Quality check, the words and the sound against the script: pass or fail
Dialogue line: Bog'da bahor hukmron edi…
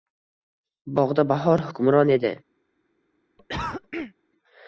fail